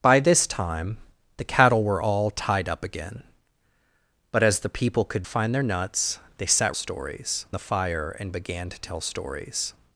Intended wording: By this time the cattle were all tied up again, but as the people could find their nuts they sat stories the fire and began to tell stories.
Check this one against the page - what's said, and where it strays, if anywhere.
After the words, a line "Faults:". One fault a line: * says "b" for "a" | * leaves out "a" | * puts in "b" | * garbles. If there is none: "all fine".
By this time the cattle were all tied up again, but as the people could find their nuts they sat stories the fire and began to tell stories.
Faults:
all fine